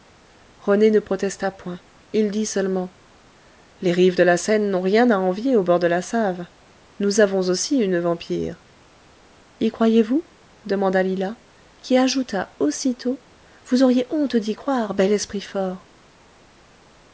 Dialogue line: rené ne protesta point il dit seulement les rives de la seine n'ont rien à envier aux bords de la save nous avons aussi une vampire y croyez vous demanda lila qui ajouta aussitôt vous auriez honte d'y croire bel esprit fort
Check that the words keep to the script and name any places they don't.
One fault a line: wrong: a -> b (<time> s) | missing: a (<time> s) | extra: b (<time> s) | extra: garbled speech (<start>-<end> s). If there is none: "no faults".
no faults